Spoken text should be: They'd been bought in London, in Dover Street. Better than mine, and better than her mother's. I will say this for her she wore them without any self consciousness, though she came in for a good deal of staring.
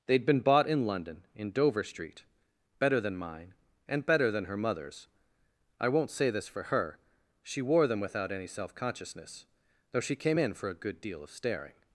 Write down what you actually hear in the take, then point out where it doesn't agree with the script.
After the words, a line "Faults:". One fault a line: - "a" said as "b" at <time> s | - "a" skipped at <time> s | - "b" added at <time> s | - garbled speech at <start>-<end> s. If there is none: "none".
They'd been bought in London, in Dover Street. Better than mine, and better than her mother's. I won't say this for her she wore them without any self consciousness, though she came in for a good deal of staring.
Faults:
- "will" said as "won't" at 5.9 s